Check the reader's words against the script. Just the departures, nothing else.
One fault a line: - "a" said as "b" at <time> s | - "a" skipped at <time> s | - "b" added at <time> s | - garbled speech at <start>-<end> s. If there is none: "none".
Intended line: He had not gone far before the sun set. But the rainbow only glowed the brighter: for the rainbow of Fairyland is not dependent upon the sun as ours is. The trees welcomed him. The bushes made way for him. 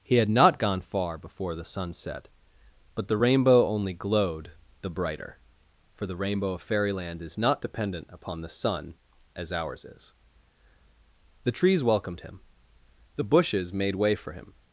none